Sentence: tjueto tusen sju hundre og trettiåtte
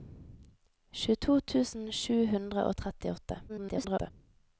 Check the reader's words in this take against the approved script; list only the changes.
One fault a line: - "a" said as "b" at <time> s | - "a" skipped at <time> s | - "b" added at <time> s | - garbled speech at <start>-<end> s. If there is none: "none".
- garbled speech at 3.5-4.1 s